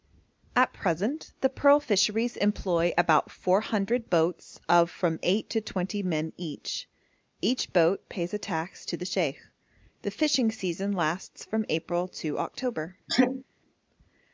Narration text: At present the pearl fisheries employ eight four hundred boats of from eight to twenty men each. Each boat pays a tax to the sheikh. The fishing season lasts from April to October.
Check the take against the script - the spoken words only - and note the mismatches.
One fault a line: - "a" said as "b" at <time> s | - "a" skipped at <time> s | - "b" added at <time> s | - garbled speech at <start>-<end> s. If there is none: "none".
- "eight" said as "about" at 3.0 s